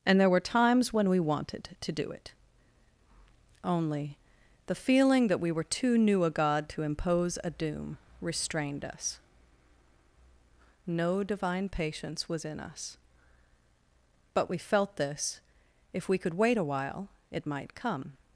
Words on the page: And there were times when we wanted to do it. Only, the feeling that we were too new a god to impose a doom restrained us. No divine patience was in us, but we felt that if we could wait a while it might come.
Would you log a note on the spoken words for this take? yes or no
yes